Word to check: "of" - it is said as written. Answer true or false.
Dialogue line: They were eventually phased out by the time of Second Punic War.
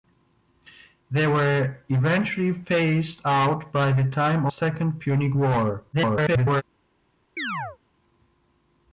false